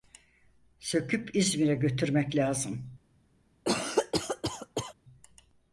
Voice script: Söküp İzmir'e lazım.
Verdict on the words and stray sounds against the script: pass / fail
fail